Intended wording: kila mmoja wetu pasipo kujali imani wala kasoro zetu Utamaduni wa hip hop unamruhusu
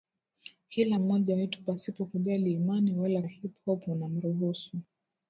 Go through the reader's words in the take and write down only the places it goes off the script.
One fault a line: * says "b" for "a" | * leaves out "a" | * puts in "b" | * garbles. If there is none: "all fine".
* leaves out "kasoro zetu Utamaduni"